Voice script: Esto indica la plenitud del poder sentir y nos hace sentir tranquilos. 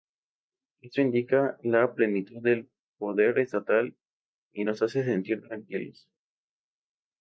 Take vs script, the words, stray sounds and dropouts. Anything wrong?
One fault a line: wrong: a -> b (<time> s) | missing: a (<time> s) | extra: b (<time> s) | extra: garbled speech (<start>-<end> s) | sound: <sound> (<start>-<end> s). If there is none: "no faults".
wrong: sentir -> estatal (3.4 s)